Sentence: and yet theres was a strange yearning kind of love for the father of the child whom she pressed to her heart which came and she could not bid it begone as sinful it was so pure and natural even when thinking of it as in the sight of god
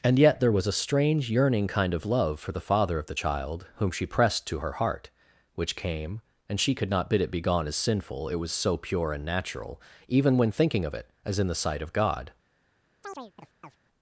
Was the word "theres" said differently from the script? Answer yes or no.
yes